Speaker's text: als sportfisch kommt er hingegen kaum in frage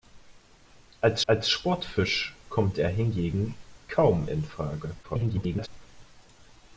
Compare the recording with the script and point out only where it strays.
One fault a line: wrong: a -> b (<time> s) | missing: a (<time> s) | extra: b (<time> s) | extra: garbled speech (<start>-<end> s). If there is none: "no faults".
extra: als (1.3 s)
extra: garbled speech (5.0-5.7 s)